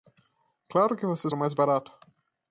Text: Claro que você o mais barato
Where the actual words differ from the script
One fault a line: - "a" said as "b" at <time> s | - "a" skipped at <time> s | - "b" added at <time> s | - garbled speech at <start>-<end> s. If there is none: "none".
none